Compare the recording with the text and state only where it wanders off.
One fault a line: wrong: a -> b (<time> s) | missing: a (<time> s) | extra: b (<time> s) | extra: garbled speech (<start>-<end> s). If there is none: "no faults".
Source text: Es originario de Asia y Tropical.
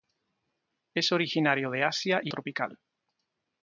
no faults